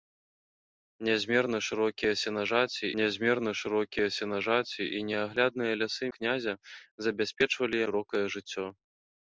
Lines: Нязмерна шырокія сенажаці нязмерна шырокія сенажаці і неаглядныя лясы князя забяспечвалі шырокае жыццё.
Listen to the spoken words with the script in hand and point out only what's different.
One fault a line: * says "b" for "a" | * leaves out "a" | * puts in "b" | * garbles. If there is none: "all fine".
all fine